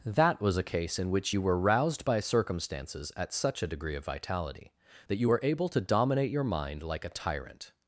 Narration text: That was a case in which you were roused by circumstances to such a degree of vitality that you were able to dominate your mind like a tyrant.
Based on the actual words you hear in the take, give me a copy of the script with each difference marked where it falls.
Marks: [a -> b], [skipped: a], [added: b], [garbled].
That was a case in which you were roused by circumstances [to -> at] such a degree of vitality that you were able to dominate your mind like a tyrant.